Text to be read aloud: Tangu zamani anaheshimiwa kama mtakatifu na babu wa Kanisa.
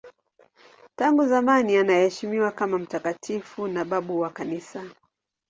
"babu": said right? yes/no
yes